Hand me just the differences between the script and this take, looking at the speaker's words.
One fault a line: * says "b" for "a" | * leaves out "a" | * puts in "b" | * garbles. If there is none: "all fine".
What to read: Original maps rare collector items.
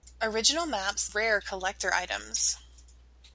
all fine